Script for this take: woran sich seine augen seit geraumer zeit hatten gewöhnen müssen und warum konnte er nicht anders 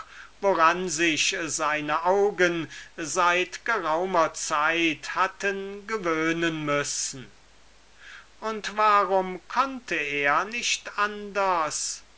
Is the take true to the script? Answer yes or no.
yes